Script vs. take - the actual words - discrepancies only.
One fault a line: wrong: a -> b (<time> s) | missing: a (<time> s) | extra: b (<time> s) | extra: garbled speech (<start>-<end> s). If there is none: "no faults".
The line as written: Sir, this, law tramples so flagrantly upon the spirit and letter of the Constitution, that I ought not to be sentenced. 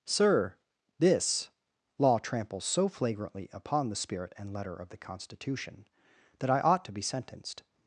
missing: not (6.9 s)